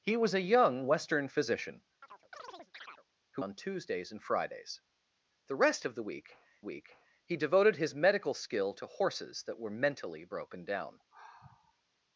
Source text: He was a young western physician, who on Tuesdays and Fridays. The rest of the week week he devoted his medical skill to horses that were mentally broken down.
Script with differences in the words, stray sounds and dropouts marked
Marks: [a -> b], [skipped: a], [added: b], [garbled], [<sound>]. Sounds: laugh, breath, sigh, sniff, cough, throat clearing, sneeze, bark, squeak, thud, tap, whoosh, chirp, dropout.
He was a young western physician, [chirp] who on Tuesdays and Fridays. The rest of the week week he devoted his medical skill to horses that were mentally broken down. [sigh]